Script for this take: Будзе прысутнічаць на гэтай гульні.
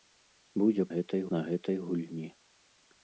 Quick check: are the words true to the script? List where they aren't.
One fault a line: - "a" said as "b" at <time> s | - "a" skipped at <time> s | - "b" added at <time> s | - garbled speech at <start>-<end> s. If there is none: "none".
- "прысутнічаць" said as "гэтай" at 0.9 s